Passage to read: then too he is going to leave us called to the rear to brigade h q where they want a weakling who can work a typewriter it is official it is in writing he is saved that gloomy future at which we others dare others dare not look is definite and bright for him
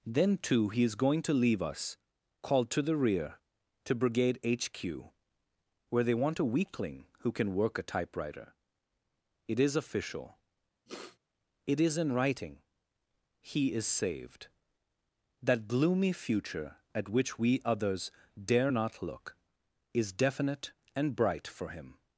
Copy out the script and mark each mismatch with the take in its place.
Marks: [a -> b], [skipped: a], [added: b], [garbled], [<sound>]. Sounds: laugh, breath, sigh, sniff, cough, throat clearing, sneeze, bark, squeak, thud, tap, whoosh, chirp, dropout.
then too he is going to leave us called to the rear to brigade h q where they want a weakling who can work a typewriter it is official [sniff] it is in writing he is saved that gloomy future at which we others dare [skipped: others dare] not look is definite and bright for him